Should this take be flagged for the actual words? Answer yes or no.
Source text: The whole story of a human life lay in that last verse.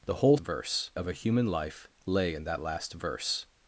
yes